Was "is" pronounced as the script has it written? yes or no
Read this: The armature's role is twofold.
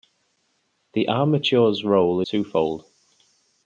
no